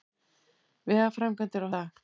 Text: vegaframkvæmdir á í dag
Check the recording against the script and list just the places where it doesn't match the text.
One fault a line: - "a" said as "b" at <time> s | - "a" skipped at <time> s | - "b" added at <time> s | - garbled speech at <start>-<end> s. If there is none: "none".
none